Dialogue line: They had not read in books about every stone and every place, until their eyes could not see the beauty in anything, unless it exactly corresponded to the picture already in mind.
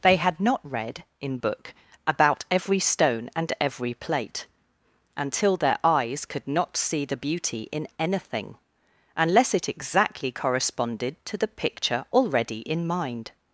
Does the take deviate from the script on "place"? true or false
true